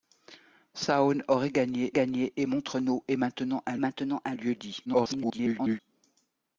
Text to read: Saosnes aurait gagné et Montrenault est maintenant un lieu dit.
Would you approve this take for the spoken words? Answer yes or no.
no